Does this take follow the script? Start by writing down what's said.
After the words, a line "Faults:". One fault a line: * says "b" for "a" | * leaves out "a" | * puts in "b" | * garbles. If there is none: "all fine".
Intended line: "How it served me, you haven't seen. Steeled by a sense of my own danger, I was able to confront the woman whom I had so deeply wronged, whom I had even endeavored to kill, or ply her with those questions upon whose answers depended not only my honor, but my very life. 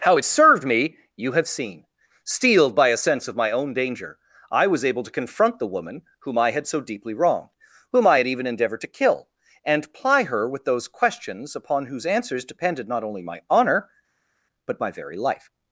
"How it served me, you have seen. Steeled by a sense of my own danger, I was able to confront the woman whom I had so deeply wronged, whom I had even endeavored to kill, and ply her with those questions upon whose answers depended not only my honor, but my very life.
Faults:
* says "have" for "haven't"
* says "and" for "or"